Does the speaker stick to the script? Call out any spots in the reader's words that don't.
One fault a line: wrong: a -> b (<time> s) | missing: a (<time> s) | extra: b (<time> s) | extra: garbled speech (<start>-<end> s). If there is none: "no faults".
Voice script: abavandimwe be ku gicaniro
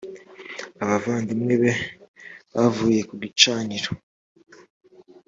extra: bavuye (2.5 s)